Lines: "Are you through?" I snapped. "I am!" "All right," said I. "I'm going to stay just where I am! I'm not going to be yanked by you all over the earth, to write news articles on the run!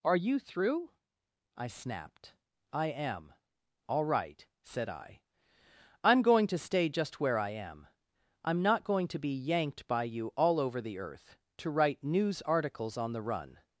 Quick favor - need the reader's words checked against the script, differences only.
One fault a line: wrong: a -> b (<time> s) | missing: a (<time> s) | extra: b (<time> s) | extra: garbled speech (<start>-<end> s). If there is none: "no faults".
no faults